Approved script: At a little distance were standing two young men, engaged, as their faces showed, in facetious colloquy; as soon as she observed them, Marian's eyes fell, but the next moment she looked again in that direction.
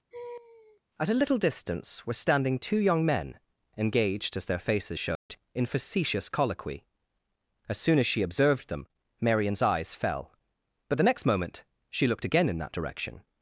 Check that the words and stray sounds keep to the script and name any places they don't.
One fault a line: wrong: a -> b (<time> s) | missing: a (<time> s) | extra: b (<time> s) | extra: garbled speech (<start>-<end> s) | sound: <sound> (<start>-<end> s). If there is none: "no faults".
sound: laugh (0.1-0.8 s)
sound: dropout (5.1-5.3 s)